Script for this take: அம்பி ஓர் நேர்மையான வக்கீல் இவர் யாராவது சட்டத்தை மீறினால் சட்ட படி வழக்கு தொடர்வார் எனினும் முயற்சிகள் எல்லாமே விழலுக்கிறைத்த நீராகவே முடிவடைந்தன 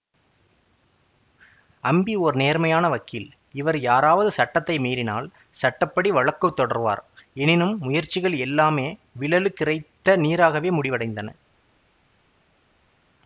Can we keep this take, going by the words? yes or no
yes